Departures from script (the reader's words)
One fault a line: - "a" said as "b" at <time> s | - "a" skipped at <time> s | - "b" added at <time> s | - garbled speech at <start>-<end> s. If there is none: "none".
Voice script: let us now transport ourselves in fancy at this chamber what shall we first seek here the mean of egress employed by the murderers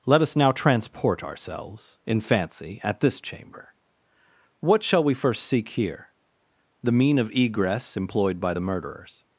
none